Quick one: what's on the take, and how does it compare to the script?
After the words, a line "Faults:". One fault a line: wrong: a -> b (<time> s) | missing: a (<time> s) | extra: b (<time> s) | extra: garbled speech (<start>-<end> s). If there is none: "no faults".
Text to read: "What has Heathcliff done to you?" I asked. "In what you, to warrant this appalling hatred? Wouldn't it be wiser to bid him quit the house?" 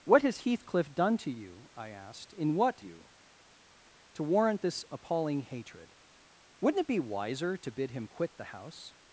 "What has Heathcliff done to you?" I asked. "In what you, to warrant this appalling hatred? Wouldn't it be wiser to bid him quit the house?"
Faults:
no faults